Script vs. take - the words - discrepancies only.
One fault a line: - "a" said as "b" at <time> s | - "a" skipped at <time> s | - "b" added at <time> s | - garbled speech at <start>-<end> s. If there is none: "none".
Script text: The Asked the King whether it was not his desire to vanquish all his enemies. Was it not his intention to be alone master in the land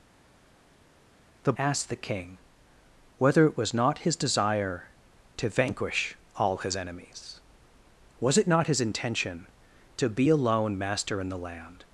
none